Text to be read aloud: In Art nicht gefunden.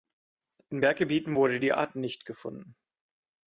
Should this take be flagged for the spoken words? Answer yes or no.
yes